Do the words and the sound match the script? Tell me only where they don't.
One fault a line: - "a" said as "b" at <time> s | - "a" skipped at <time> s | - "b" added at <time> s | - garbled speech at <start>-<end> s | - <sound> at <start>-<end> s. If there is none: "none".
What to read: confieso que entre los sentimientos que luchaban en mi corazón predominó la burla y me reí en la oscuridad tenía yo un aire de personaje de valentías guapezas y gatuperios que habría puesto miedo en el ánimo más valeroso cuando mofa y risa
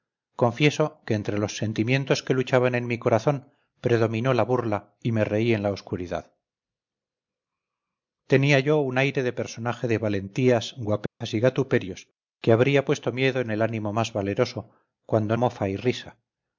- dropout at 11.1-11.2 s